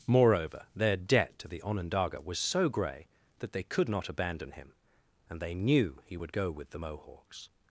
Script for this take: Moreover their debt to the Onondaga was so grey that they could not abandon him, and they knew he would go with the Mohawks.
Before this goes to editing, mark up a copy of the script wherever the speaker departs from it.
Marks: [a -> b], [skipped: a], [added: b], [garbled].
Moreover their debt to the Onondaga was so grey that they could not abandon him, and they knew he would go with the Mohawks.